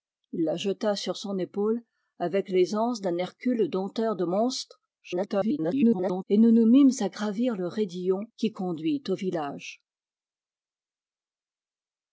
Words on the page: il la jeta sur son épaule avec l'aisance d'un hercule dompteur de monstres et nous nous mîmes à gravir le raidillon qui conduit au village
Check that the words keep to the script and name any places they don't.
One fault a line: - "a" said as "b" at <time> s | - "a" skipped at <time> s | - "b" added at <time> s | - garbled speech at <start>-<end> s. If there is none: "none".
- garbled speech at 5.0-6.2 s